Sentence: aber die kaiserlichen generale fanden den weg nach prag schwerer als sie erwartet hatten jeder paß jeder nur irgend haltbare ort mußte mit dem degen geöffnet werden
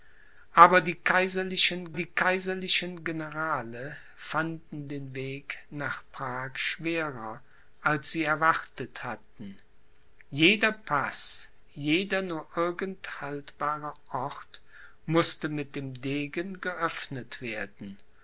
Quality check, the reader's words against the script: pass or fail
fail